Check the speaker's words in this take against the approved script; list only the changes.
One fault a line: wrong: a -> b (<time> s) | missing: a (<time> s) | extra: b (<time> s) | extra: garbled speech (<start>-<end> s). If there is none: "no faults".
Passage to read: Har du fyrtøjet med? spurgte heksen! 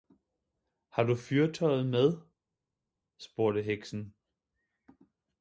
no faults